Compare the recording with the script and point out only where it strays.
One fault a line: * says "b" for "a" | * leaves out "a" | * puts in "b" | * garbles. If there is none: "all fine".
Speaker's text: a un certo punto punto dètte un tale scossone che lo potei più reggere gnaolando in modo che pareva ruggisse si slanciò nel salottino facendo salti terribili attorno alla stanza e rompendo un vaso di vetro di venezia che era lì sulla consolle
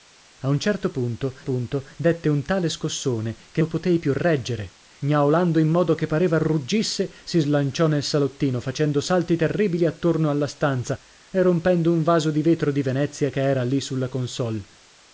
all fine